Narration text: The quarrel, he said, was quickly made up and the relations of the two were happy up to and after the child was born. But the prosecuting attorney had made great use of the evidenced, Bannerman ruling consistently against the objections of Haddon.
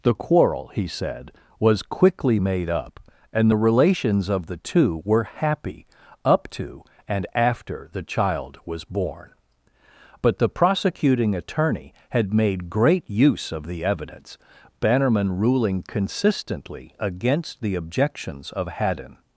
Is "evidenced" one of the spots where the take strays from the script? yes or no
yes